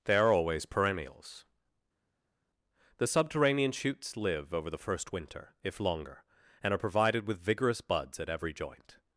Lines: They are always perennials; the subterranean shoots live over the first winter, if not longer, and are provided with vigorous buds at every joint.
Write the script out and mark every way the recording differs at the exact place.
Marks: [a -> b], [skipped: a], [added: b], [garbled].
They are always perennials; the subterranean shoots live over the first winter, if [skipped: not] longer, and are provided with vigorous buds at every joint.